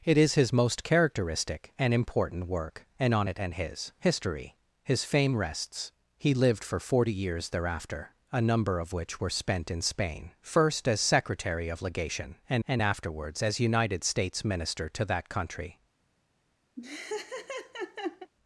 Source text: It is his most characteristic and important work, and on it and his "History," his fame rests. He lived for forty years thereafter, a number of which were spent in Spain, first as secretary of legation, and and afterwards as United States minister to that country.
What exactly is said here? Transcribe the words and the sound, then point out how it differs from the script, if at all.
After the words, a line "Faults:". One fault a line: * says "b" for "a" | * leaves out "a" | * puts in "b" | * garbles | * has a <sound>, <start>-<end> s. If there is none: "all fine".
It is his most characteristic and important work, and on it and his "History," his fame rests. He lived for forty years thereafter, a number of which were spent in Spain, first as secretary of legation, and and afterwards as United States minister to that country.
Faults:
* has a laugh, 16.8-18.3 s